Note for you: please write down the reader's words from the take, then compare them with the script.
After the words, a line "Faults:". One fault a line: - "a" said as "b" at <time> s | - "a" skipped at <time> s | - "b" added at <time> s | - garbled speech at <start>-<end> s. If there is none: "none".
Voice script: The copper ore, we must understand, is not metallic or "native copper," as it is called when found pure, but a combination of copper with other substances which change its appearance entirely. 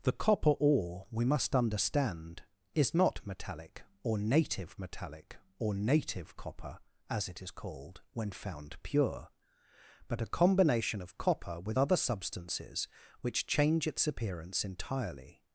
The copper ore, we must understand, is not metallic or "native metallic or native copper," as it is called when found pure, but a combination of copper with other substances which change its appearance entirely.
Faults:
- "metallic or native" added at 4.8 s